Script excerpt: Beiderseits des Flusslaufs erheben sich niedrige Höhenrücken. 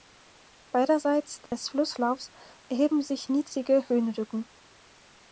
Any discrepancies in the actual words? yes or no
no